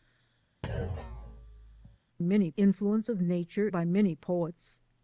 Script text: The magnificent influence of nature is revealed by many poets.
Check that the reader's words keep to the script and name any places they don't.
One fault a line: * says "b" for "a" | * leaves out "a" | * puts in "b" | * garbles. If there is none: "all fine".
* says "many" for "magnificent"
* leaves out "is revealed"